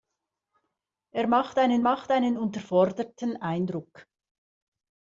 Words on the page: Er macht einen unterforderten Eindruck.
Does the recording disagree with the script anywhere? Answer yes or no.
yes